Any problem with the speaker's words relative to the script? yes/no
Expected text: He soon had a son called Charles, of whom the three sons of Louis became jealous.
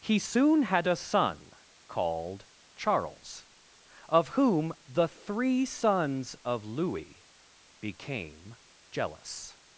no